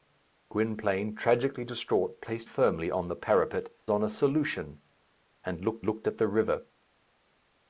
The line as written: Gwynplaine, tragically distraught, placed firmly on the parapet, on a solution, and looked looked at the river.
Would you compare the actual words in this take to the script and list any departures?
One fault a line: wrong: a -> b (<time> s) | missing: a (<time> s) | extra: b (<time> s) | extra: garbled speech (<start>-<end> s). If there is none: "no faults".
no faults